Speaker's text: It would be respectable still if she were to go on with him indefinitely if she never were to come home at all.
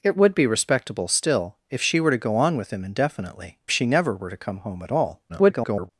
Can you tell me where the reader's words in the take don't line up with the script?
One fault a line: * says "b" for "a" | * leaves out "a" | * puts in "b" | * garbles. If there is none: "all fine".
* leaves out "if"
* garbles